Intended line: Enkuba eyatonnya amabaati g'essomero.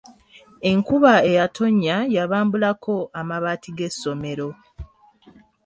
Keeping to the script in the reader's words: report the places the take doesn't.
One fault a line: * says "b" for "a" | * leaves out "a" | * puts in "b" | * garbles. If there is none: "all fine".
* puts in "yabambulako"